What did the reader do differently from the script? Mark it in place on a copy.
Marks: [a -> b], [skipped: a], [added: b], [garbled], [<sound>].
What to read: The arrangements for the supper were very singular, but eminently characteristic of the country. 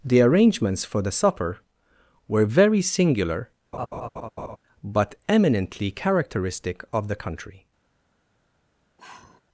The arrangements for the supper were very singular, [laugh] but eminently characteristic of the country. [sigh]